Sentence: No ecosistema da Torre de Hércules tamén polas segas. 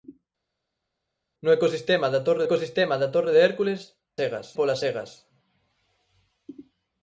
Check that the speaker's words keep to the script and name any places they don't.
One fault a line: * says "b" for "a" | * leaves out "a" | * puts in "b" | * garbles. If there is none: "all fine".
* puts in "ecosistema da Torre"
* says "segas" for "tamén"